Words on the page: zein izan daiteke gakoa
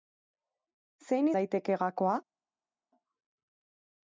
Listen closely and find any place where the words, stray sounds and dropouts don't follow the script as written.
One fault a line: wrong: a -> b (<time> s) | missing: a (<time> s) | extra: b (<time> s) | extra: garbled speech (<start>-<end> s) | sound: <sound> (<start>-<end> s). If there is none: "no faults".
missing: izan (1.3 s)